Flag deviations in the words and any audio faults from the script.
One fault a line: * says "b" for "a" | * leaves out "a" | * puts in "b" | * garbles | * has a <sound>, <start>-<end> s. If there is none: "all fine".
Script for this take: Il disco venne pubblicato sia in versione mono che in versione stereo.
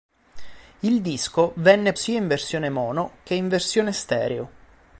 * leaves out "pubblicato"